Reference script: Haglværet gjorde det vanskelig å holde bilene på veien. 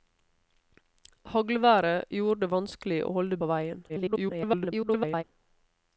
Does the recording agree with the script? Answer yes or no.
no